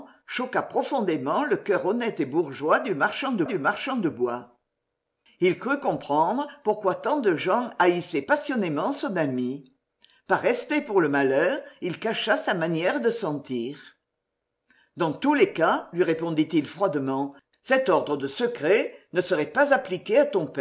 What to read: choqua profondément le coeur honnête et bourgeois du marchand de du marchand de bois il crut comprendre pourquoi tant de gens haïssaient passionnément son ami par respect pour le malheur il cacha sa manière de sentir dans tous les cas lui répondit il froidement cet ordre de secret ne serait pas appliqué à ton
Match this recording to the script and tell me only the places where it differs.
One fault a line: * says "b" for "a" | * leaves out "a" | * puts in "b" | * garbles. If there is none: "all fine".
all fine